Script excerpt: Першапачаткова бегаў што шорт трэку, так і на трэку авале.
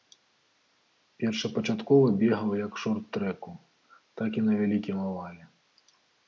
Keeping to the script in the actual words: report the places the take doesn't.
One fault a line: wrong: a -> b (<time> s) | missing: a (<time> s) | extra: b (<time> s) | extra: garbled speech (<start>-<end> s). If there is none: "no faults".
wrong: што -> як (2.6 s)
wrong: трэку -> вялікім (4.6 s)